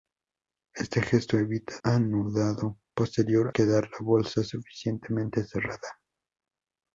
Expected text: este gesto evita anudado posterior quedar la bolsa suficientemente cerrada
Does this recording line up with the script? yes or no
yes